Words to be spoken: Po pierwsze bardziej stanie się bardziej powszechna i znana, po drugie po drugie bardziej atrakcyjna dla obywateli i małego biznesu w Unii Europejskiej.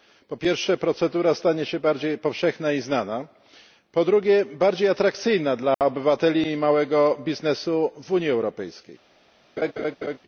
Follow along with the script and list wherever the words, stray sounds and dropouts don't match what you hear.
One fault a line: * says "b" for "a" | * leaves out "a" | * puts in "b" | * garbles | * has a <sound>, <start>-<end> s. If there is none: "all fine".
* says "procedura" for "bardziej"
* leaves out "po drugie"
* has a dropout, 5.7-5.8 s
* has a laugh, 9.6-10.2 s